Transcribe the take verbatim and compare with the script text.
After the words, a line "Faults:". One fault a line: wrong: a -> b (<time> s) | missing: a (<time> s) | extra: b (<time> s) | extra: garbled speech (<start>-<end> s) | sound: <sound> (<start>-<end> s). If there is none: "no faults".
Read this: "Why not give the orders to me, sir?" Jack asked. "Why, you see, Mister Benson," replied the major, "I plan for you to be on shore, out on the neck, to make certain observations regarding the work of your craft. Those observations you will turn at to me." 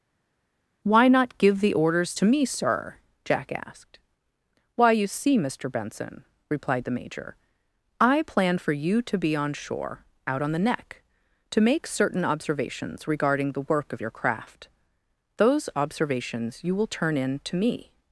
"Why not give the orders to me, sir?" Jack asked. "Why, you see, Mister Benson," replied the major, "I plan for you to be on shore, out on the neck, to make certain observations regarding the work of your craft. Those observations you will turn in to me."
Faults:
wrong: at -> in (17.2 s)